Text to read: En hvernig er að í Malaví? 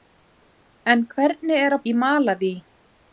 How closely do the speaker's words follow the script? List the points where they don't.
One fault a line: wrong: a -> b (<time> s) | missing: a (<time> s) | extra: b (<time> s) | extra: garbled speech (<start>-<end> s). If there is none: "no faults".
no faults